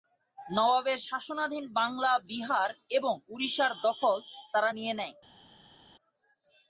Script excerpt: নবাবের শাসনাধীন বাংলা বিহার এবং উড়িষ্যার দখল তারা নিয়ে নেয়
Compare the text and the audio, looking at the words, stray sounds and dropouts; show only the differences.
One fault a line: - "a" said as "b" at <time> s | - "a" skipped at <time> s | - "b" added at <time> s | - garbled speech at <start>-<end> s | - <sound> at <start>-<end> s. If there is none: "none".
none